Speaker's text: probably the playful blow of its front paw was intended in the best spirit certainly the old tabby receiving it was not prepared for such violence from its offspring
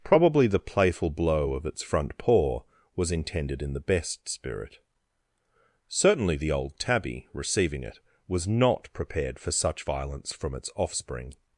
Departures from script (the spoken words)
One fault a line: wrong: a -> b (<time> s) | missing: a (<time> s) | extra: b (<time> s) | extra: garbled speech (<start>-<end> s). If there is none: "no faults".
no faults